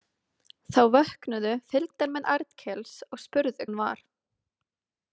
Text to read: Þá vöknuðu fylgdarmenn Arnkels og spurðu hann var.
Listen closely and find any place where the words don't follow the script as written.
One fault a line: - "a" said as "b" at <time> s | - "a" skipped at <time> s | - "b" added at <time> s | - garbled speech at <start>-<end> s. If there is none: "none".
none